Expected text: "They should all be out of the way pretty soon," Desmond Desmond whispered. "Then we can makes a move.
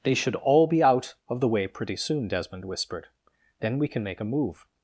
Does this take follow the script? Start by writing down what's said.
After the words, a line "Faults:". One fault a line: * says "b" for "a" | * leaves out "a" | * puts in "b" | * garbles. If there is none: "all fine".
"They should all be out of the way pretty soon," Desmond whispered. "Then we can make a move.
Faults:
* leaves out "Desmond"
* says "make" for "makes"